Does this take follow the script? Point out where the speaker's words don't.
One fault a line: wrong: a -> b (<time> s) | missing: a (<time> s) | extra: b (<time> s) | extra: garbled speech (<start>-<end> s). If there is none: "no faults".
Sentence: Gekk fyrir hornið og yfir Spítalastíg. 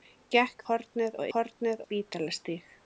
missing: fyrir (0.6 s)
wrong: yfir -> hornið (1.3 s)